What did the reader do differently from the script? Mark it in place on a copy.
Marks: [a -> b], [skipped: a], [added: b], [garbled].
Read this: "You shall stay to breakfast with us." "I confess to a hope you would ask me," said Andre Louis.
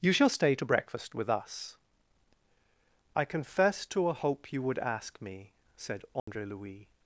"You shall stay to breakfast with us." "I confess to a hope you would ask me," said Andre Louis.